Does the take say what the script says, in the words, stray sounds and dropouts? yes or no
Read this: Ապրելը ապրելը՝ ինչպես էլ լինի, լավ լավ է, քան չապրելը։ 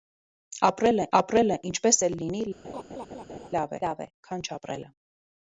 no